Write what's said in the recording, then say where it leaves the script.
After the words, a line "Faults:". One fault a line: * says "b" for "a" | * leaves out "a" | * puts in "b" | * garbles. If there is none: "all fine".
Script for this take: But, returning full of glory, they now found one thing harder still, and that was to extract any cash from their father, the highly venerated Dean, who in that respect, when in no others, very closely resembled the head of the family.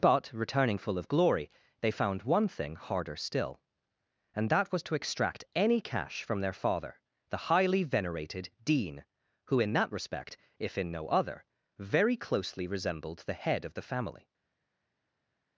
But, returning full of glory, they found one thing harder still, and that was to extract any cash from their father, the highly venerated Dean, who in that respect, if in no other, very closely resembled the head of the family.
Faults:
* leaves out "now"
* says "if" for "when"
* says "other" for "others"